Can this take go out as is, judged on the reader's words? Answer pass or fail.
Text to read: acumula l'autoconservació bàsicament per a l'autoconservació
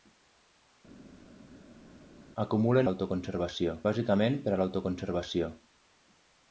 pass